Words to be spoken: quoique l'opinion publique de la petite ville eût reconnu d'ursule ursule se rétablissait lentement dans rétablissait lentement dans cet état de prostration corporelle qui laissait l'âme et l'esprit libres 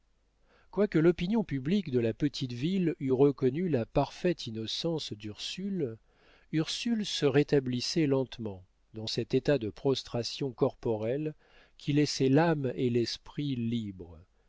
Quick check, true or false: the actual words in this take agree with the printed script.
false